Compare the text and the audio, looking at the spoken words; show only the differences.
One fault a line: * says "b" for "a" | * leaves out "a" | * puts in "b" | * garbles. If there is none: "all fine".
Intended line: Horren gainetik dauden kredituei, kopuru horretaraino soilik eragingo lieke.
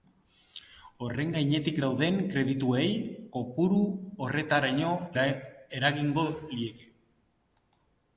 * leaves out "soilik"